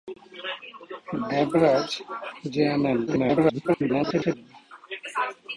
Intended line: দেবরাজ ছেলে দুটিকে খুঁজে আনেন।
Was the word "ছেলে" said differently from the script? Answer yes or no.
yes